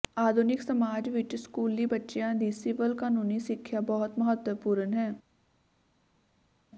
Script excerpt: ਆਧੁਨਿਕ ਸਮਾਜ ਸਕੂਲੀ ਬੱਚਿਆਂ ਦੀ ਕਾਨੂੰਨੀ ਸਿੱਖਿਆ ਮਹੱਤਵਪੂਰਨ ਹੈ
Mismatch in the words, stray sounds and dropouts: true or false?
true